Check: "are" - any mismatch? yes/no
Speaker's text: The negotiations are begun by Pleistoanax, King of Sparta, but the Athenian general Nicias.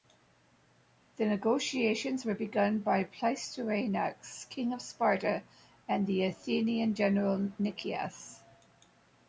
yes